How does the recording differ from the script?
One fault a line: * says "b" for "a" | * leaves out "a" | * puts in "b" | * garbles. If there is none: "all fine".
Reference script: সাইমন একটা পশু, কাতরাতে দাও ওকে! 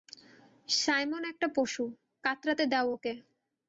all fine